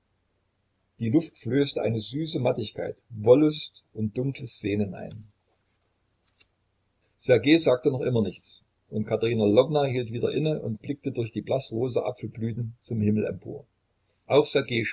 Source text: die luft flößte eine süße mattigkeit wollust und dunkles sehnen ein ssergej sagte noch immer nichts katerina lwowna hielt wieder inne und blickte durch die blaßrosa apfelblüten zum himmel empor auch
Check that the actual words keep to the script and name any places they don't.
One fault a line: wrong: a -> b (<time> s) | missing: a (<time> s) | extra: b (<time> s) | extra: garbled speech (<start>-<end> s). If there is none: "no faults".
extra: und (8.9 s)